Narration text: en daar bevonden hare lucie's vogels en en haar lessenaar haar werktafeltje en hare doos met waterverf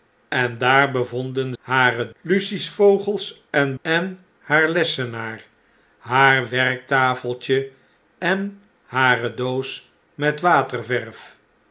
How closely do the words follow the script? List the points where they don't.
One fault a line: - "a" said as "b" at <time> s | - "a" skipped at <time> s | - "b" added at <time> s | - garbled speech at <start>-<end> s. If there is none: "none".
none